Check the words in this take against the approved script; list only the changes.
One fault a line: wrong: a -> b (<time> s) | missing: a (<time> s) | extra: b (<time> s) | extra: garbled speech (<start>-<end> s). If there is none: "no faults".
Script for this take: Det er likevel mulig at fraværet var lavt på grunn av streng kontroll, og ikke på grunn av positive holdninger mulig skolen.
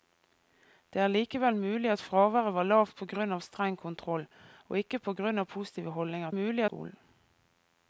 no faults